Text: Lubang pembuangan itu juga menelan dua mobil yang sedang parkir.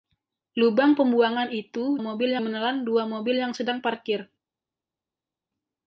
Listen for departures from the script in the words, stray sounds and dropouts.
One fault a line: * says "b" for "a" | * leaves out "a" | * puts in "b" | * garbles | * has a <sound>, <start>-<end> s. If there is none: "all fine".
* says "mobil" for "juga"